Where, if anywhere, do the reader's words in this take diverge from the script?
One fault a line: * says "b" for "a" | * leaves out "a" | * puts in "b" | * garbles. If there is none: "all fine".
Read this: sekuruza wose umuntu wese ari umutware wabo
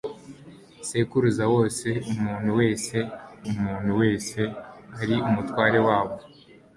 * puts in "umuntu wese"